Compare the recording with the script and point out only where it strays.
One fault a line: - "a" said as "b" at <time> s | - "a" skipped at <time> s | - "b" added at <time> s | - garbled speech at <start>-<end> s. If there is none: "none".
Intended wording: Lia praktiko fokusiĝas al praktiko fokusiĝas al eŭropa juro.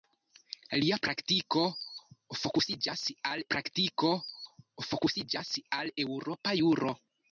none